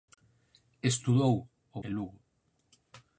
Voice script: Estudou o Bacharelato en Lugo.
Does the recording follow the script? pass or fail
fail